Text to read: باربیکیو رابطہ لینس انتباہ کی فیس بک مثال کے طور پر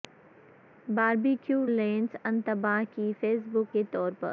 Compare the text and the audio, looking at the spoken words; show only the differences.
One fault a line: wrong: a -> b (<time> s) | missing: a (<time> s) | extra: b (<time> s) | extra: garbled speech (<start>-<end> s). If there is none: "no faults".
missing: رابطہ (1.6 s)
missing: مثال (3.8 s)